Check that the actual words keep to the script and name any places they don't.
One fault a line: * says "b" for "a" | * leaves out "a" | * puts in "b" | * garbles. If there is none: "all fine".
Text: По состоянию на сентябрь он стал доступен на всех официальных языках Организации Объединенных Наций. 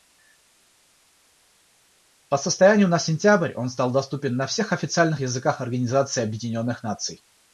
all fine